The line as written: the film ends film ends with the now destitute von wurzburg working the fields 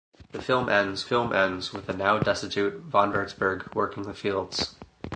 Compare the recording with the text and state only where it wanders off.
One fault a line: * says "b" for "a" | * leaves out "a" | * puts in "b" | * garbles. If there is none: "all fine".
all fine